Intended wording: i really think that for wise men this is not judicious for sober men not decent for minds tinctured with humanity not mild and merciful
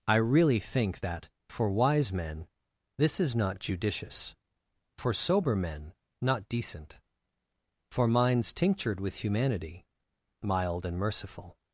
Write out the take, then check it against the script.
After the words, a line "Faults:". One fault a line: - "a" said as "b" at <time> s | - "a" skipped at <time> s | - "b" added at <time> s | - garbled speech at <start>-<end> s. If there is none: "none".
i really think that for wise men this is not judicious for sober men not decent for minds tinctured with humanity mild and merciful
Faults:
- "not" skipped at 9.9 s